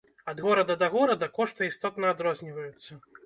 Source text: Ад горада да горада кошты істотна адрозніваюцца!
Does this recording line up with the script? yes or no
yes